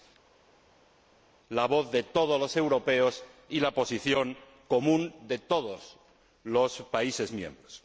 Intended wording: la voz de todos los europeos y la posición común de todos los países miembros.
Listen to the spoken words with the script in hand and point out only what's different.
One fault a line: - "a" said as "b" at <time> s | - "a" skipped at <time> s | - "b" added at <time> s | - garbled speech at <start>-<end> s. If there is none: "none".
none